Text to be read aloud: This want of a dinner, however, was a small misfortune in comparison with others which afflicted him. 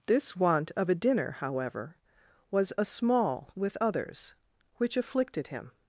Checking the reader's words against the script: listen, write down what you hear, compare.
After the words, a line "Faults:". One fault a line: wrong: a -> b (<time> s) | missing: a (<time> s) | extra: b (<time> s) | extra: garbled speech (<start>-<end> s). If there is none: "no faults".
This want of a dinner, however, was a small with others which afflicted him.
Faults:
missing: misfortune in comparison (3.5 s)